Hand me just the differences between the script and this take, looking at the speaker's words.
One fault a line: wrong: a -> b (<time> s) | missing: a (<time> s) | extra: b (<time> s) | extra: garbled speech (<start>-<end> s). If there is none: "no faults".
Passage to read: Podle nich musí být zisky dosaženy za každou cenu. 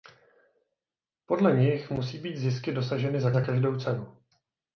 extra: za (3.3 s)